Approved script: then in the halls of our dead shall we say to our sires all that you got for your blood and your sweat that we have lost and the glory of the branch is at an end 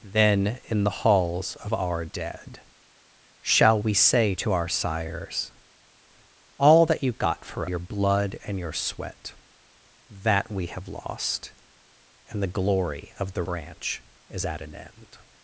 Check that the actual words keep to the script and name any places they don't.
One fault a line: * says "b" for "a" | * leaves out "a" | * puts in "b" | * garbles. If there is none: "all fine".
all fine